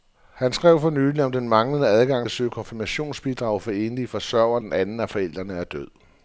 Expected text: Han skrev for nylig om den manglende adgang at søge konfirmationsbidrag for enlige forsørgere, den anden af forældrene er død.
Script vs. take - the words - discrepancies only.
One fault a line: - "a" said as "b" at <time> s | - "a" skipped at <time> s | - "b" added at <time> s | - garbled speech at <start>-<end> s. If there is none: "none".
none